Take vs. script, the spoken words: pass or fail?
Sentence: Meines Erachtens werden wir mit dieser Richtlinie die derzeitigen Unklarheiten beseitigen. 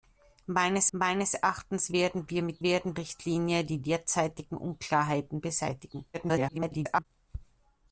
fail